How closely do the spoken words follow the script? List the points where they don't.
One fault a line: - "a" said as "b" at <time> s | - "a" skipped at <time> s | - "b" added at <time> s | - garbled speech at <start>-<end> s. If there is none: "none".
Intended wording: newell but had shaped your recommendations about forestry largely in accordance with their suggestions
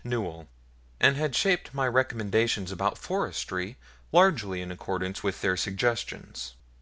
- "but" said as "and" at 1.0 s
- "your" said as "my" at 1.8 s